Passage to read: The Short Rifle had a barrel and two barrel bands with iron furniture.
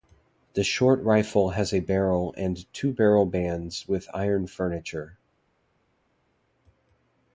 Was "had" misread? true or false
true